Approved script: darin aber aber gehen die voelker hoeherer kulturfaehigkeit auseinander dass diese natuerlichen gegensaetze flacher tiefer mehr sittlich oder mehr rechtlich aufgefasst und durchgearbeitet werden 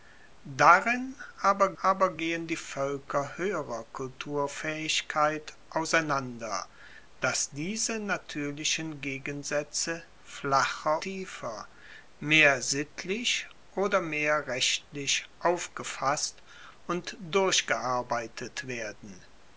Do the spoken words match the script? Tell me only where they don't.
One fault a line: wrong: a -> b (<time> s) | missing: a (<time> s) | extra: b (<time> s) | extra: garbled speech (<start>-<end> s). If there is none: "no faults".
no faults